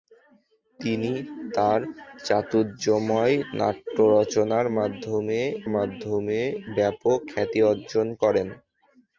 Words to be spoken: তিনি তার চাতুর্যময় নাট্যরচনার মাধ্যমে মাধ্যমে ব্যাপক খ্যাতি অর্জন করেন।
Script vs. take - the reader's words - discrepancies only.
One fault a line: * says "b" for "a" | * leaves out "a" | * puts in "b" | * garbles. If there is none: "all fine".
all fine